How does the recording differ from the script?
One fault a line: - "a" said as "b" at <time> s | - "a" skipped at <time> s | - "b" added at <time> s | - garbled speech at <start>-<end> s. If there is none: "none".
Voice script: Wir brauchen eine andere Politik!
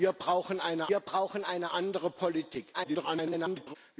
- "wir brauchen eine" added at 0.9 s
- garbled speech at 2.7-3.8 s